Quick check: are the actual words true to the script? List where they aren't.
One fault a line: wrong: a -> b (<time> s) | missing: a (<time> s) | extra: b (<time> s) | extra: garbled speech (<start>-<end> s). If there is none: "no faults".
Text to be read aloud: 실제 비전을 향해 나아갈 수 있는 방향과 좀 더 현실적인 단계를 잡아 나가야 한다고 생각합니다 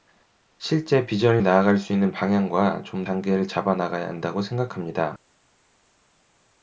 missing: 향해 (1.4 s)
missing: 더 현실적인 (3.0 s)